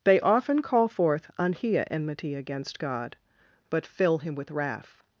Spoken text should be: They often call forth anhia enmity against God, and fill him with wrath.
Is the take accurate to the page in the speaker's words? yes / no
no